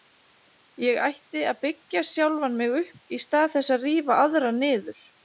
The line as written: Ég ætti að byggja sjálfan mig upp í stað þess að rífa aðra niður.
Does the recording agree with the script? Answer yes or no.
yes